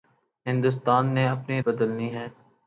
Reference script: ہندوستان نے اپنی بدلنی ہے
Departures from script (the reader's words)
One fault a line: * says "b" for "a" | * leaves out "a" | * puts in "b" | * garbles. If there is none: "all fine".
all fine